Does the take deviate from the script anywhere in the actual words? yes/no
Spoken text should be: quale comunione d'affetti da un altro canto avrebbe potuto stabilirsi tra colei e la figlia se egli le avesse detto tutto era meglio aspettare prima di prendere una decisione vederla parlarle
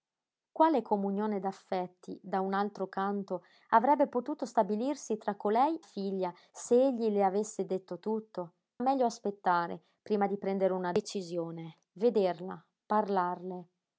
yes